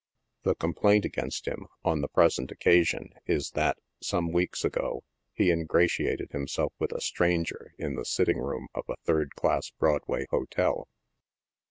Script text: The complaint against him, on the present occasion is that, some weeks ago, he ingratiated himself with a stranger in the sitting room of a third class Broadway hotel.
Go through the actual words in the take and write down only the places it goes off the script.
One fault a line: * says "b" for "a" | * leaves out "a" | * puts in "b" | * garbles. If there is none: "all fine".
all fine